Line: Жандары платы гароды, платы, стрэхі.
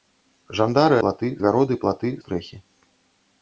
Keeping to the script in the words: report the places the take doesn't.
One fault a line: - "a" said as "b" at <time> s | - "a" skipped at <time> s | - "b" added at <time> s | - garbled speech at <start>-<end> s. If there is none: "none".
none